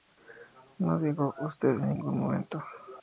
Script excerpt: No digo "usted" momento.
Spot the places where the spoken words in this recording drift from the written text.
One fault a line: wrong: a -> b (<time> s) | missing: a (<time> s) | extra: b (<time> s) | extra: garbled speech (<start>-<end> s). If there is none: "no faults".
extra: en ningún (1.8 s)